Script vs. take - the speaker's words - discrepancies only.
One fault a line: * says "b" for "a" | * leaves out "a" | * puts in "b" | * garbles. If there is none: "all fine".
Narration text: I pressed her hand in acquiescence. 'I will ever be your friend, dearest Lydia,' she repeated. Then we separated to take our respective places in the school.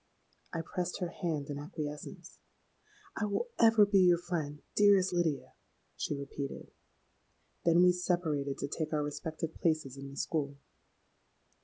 all fine